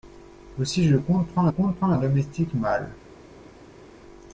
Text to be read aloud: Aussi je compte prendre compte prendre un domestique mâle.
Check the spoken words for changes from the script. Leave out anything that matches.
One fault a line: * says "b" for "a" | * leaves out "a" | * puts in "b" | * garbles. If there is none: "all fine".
all fine